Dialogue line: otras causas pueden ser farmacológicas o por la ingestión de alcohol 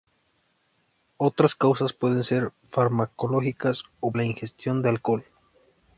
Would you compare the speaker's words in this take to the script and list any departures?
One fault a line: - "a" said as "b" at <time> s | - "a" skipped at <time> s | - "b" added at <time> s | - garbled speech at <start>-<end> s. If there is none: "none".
- "por" skipped at 4.1 s